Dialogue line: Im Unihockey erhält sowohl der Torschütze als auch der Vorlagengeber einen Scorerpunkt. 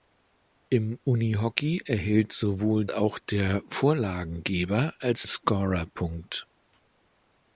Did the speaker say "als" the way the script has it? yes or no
no